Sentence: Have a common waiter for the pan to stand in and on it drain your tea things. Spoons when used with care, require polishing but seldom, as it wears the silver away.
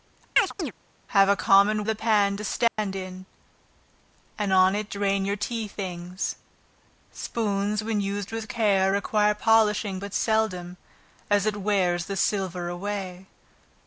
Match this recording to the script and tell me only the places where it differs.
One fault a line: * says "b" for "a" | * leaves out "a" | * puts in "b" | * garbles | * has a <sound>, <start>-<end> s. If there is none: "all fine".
* has a chirp, 0.4-0.7 s
* leaves out "waiter for"
* has a dropout, 2.7-2.8 s